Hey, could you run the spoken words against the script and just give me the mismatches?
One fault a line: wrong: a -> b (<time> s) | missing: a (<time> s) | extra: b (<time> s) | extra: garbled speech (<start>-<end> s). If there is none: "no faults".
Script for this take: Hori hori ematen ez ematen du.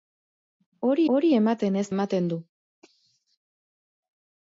no faults